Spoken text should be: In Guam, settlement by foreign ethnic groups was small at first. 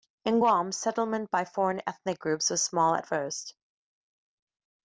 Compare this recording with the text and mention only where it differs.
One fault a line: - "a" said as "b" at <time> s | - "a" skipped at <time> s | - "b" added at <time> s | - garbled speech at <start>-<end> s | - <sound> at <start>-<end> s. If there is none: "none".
none